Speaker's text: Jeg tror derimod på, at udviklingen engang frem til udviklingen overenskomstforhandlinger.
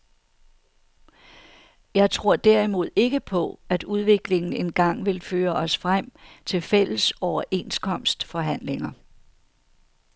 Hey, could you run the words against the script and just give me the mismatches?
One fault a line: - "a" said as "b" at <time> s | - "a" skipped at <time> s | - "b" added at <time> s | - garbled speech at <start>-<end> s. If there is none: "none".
- "ikke" added at 3.0 s
- "vil føre os" added at 5.0 s
- "udviklingen" said as "fælles" at 6.6 s